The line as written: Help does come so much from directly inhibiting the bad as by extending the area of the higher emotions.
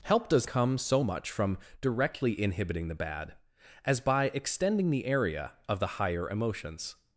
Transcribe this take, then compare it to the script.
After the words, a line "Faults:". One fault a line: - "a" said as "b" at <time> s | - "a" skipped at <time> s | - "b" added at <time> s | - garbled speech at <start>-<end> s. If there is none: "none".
Help does come so much from directly inhibiting the bad as by extending the area of the higher emotions.
Faults:
none